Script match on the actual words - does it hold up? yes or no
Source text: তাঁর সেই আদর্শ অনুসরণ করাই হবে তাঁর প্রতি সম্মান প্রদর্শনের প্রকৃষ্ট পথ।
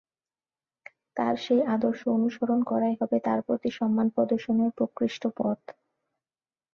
yes